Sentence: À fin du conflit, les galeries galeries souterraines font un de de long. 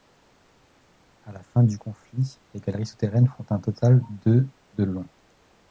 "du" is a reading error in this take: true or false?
false